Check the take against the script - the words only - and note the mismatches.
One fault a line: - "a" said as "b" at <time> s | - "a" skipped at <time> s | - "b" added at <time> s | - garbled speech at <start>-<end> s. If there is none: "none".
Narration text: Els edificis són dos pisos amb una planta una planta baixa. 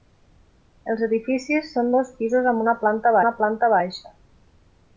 none